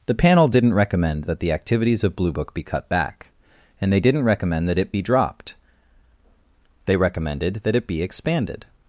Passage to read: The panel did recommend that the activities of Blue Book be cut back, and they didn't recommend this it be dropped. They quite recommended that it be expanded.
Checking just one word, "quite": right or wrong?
wrong